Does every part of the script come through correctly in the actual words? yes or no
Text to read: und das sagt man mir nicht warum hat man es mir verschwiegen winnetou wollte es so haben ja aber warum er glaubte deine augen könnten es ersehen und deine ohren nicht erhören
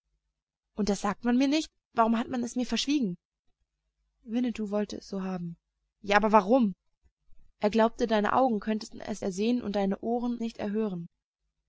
yes